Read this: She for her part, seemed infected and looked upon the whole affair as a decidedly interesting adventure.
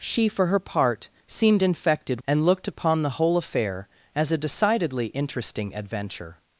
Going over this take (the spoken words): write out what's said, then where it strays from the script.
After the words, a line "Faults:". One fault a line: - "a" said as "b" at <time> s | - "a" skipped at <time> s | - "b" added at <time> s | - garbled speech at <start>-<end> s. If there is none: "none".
She for her part, seemed infected and looked upon the whole affair as a decidedly interesting adventure.
Faults:
none